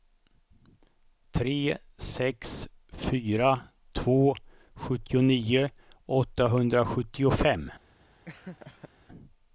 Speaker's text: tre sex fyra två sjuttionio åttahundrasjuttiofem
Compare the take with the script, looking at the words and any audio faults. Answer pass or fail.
fail